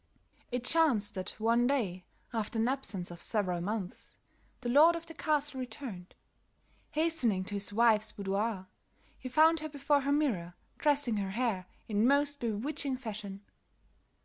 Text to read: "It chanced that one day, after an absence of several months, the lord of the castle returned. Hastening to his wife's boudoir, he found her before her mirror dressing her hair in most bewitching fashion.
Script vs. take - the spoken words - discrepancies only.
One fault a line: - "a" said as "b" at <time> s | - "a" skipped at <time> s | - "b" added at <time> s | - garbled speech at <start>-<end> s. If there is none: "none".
none